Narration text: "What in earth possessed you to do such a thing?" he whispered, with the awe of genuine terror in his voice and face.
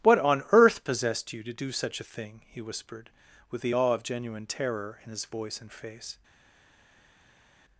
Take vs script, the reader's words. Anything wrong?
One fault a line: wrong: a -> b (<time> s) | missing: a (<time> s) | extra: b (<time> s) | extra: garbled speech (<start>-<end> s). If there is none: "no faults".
wrong: in -> on (0.2 s)